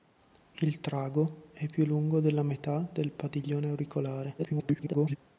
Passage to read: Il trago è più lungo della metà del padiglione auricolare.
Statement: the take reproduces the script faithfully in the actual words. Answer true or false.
false